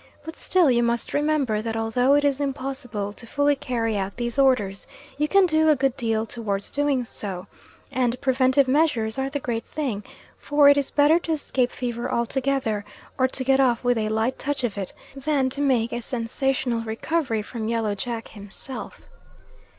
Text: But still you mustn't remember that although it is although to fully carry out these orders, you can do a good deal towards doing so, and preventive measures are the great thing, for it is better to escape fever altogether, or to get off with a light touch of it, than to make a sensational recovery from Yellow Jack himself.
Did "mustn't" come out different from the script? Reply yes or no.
yes